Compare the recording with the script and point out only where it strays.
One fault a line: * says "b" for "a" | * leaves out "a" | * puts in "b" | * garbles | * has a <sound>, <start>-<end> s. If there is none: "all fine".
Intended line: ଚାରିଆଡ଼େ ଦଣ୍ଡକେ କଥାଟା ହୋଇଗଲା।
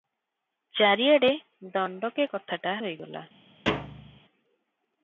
* has a thud, 3.7-4.2 s